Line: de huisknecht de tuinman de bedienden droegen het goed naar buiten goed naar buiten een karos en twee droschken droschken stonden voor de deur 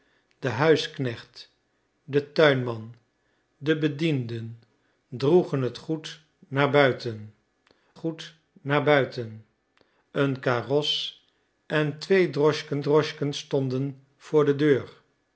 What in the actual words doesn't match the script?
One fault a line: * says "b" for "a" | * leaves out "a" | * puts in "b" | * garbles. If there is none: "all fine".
all fine